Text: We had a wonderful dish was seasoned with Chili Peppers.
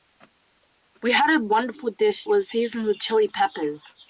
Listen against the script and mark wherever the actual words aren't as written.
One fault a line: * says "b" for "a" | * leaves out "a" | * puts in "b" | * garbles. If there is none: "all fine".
all fine